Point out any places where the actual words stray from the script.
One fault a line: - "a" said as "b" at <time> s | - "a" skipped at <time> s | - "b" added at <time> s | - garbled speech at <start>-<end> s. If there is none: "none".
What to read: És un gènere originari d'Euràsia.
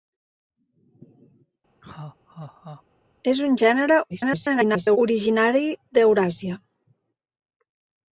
- garbled speech at 4.1-5.0 s